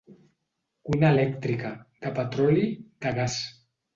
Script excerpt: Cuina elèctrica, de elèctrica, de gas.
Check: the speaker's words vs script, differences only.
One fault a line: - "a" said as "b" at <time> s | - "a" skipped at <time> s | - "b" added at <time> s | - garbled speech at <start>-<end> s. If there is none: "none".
- "elèctrica" said as "petroli" at 2.2 s